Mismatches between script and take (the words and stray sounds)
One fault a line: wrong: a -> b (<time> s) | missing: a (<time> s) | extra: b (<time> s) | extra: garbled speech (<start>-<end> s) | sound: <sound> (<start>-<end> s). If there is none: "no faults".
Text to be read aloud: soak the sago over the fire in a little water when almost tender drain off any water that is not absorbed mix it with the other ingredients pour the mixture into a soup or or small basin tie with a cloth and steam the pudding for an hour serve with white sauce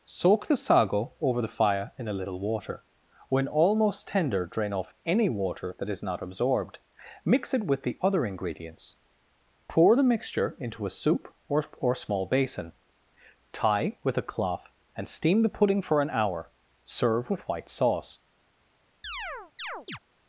sound: chirp (19.0-20.0 s)